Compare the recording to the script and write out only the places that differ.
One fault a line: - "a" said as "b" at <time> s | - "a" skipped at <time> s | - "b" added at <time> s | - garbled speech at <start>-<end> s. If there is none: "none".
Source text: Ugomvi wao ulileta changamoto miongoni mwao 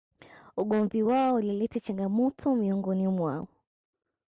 none